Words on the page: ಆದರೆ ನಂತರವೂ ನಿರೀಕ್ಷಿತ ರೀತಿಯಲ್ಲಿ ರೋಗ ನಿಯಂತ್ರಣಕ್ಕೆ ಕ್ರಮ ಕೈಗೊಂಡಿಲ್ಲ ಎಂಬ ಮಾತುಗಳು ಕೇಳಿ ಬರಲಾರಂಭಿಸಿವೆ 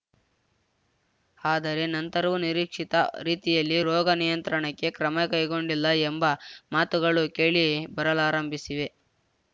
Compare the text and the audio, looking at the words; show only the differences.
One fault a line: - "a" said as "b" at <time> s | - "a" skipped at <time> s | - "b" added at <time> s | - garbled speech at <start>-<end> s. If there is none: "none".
none